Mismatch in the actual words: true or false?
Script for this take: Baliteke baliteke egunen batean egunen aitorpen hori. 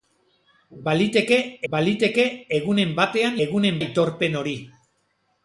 false